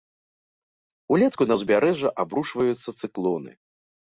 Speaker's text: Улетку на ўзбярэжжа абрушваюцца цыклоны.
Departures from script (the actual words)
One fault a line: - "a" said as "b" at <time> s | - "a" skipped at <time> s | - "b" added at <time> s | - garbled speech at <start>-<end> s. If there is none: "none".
none